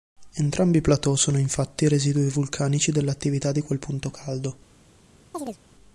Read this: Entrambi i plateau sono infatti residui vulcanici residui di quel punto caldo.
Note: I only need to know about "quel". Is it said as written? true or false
true